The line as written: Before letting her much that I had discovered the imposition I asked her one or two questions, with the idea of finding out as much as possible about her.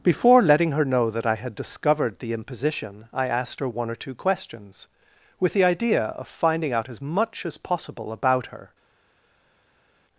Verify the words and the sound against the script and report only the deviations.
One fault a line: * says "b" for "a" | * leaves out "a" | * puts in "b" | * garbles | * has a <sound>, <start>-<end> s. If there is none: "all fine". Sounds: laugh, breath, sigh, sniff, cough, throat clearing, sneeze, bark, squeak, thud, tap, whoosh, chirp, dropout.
* says "know" for "much"